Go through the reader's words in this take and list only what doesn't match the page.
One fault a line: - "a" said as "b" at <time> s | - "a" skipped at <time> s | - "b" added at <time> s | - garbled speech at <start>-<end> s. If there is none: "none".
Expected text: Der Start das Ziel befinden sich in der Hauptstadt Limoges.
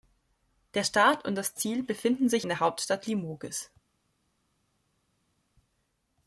- "und" added at 1.2 s